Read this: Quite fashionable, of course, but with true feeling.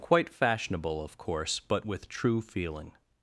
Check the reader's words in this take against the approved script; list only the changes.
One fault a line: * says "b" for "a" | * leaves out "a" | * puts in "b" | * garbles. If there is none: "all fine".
all fine